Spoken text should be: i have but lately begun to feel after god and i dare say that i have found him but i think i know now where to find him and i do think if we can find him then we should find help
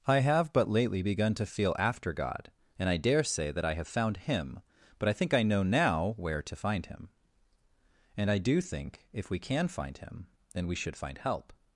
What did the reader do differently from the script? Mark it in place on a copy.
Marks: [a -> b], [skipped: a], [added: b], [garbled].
i have but lately begun to feel after god and i dare say that i have found him but i think i know now where to find him and i do think if we can find him then we should find help